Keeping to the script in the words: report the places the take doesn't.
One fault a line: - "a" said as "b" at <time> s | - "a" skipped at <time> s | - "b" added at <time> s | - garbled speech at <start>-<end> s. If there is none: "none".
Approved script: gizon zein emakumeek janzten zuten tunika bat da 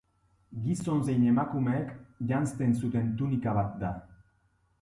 none